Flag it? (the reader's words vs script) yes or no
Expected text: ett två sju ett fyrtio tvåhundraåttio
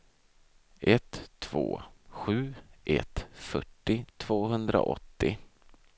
no